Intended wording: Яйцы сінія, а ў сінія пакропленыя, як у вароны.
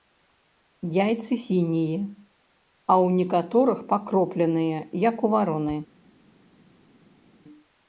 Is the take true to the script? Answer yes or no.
no